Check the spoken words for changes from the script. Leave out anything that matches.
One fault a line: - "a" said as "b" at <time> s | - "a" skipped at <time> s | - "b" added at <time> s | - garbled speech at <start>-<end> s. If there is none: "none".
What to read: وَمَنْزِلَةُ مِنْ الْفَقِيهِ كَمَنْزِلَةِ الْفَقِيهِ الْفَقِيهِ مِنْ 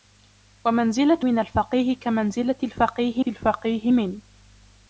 none